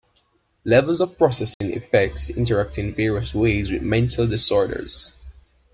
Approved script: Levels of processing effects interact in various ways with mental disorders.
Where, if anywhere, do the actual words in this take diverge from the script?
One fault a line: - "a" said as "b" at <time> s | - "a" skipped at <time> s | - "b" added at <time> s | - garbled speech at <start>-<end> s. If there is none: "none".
none